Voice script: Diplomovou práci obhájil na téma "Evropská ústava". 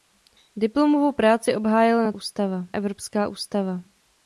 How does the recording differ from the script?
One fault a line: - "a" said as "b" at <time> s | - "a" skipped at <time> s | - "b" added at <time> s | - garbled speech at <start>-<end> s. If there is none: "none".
- "téma" said as "ústava" at 2.1 s